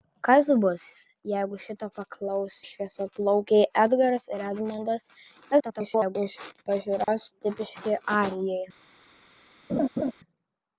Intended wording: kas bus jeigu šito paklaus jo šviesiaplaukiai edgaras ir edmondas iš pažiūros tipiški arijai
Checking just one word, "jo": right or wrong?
wrong